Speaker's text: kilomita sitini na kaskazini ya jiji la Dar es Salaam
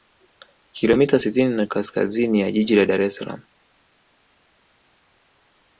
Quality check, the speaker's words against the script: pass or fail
pass